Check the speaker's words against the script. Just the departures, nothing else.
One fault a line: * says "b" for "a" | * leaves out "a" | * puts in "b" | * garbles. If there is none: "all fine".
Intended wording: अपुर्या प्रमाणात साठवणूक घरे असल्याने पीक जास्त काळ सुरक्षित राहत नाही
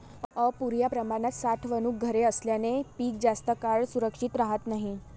all fine